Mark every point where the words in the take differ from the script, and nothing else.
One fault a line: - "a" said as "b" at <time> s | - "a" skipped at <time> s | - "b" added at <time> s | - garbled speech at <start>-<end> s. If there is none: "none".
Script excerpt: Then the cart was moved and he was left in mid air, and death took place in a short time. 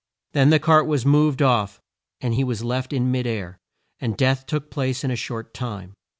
- "off" added at 1.4 s